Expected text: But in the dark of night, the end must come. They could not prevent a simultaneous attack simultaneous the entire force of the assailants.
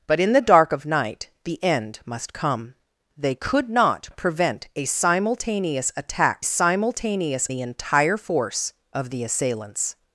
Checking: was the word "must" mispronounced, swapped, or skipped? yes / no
no